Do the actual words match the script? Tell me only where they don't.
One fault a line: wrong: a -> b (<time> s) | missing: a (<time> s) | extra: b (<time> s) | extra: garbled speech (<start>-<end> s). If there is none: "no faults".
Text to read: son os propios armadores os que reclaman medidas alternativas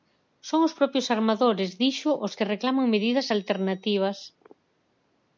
extra: dixo (1.8 s)